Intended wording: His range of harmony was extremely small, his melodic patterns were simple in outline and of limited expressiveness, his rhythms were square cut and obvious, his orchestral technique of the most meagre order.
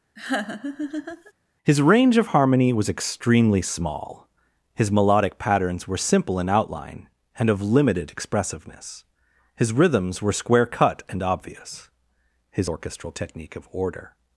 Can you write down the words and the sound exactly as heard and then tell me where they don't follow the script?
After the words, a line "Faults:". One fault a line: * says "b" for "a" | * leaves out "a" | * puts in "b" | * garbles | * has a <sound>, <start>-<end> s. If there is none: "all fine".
His range of harmony was extremely small, his melodic patterns were simple in outline and of limited expressiveness, his rhythms were square cut and obvious, his orchestral technique of order.
Faults:
* has a laugh, 0.2-1.3 s
* leaves out "the most meagre"